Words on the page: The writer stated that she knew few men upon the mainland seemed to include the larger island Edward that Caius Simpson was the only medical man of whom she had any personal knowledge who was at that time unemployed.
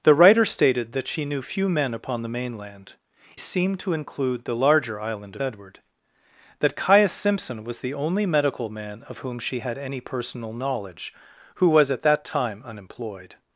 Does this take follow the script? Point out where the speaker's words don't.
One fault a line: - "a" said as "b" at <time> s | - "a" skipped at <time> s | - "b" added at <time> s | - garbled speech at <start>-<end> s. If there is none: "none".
none